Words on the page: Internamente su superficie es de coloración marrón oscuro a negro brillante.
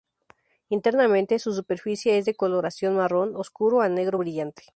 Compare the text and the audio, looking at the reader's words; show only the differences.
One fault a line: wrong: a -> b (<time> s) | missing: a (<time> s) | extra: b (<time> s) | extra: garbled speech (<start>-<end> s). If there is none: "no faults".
no faults